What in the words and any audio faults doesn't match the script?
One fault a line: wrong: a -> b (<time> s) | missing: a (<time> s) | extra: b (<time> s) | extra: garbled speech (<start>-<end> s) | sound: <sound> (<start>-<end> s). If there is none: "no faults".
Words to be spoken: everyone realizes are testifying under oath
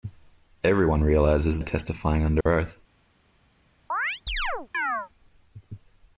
sound: dropout (2.4-2.5 s)
sound: chirp (3.9-5.1 s)